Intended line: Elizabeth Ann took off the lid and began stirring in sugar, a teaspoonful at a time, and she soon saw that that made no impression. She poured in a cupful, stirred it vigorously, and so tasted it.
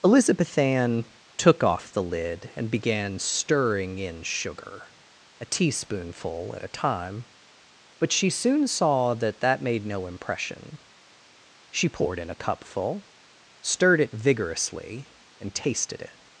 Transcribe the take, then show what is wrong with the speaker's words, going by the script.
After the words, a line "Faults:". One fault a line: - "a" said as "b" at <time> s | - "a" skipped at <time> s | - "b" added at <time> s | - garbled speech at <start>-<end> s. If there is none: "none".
Elizabeth Ann took off the lid and began stirring in sugar, a teaspoonful at a time, but she soon saw that that made no impression. She poured in a cupful, stirred it vigorously, and tasted it.
Faults:
- "and" said as "but" at 8.0 s
- "so" skipped at 15.5 s